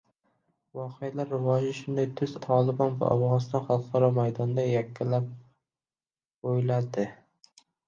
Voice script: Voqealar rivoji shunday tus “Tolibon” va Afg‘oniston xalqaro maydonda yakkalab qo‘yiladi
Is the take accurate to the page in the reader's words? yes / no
yes